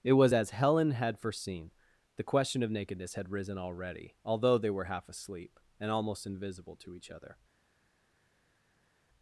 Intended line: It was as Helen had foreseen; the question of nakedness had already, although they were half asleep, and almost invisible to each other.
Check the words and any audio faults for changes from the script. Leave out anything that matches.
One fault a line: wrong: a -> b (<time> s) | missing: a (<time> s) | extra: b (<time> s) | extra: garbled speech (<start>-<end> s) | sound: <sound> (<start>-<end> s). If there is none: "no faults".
extra: risen (3.3 s)